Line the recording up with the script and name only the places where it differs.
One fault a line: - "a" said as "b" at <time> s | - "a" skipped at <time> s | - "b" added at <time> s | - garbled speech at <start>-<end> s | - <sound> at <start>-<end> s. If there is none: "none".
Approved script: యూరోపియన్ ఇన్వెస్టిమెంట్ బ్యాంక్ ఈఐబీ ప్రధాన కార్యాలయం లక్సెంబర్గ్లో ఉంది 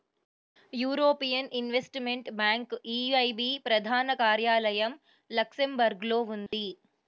- dropout at 6.5-6.5 s